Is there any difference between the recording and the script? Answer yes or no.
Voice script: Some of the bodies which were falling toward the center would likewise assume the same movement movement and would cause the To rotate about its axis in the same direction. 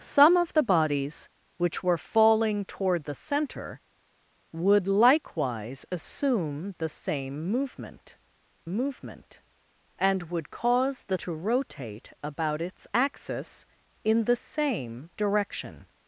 no